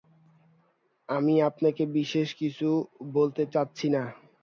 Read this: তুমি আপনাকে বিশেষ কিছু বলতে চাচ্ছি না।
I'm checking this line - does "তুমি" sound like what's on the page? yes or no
no